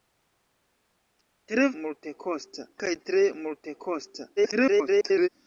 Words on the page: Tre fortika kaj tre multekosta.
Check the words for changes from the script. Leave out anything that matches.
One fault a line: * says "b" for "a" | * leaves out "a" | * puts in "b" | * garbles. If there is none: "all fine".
* says "multekosta" for "fortika"
* garbles